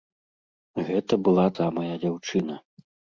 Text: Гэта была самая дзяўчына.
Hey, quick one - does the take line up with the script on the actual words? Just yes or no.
yes